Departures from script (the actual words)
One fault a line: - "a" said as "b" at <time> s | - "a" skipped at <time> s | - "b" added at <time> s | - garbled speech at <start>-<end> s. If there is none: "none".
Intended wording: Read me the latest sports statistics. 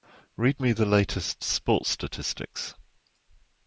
none